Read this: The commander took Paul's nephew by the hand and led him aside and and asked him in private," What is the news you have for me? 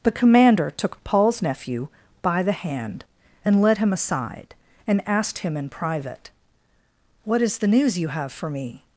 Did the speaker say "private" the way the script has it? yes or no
yes